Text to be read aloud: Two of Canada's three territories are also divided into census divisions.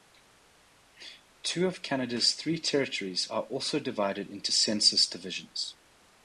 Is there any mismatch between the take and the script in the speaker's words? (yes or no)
no